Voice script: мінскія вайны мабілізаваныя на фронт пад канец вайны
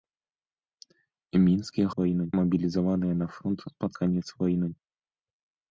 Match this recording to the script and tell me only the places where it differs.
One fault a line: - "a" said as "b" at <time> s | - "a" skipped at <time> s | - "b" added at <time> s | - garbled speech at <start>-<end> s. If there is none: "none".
none